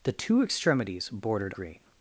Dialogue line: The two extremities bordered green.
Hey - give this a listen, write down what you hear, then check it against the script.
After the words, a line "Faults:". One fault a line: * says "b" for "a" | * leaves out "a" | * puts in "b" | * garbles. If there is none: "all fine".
The two extremities bordered green.
Faults:
all fine